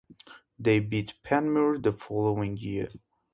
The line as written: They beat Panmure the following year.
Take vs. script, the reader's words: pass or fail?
pass